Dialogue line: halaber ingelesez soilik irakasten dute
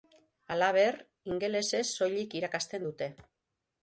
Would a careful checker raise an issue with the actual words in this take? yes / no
no